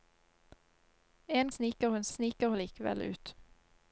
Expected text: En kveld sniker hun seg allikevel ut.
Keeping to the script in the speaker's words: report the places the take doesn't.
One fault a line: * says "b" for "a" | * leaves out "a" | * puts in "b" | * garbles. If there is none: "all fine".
* leaves out "kveld"
* says "sniker" for "seg"